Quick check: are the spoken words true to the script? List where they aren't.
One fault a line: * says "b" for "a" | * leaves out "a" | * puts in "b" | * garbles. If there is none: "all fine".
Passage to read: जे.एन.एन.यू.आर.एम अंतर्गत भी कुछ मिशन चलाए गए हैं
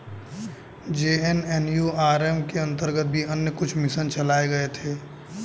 * puts in "के"
* puts in "अन्य"
* says "थे" for "हैं"